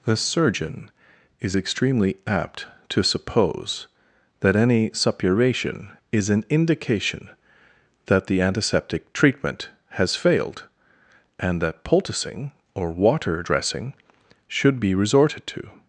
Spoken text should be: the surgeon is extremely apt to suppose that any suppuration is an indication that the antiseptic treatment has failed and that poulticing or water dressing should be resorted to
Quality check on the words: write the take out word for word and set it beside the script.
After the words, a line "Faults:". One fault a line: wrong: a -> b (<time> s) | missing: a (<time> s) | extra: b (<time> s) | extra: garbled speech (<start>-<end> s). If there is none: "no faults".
the surgeon is extremely apt to suppose that any suppuration is an indication that the antiseptic treatment has failed and that poulticing or water dressing should be resorted to
Faults:
no faults